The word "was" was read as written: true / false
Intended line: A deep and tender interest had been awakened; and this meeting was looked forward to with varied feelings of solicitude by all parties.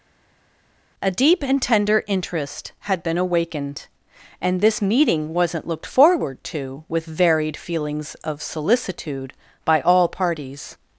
false